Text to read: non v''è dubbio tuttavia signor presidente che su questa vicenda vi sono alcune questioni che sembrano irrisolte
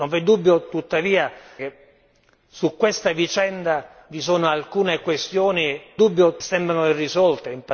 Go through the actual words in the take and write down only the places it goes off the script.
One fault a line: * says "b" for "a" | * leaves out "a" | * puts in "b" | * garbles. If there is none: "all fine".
* leaves out "signor presidente"
* says "dubbio" for "che"